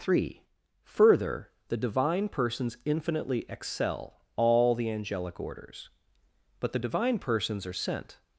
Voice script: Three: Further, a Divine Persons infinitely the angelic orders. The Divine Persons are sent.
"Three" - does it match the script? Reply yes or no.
yes